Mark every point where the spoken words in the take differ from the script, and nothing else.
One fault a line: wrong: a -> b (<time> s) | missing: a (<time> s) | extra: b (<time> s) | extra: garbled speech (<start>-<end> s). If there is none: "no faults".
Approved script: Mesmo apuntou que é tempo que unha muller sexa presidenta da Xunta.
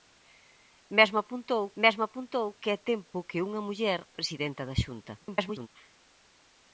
extra: mesmo apuntou (1.8 s)
missing: sexa (4.0 s)
extra: garbled speech (5.2-5.7 s)